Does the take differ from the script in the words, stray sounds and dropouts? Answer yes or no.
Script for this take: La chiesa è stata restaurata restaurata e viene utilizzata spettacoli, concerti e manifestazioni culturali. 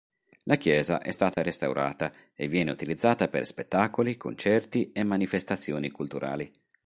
yes